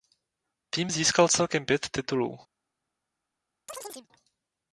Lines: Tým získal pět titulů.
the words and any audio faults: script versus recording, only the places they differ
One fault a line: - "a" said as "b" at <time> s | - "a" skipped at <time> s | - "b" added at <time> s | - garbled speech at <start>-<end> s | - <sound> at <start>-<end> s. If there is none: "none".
- "celkem" added at 1.3 s
- chirp at 3.7-4.1 s